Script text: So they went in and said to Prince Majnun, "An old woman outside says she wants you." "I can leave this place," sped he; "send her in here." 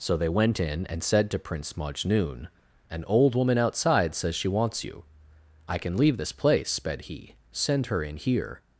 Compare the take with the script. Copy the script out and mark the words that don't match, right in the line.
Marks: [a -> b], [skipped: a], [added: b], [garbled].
So they went in and said to Prince Majnun, "An old woman outside says she wants you." "I can leave this place," sped he; "send her in here."